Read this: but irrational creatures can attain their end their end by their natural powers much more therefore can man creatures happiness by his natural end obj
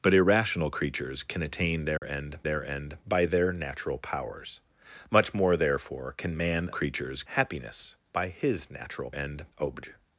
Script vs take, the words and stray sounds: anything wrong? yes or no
yes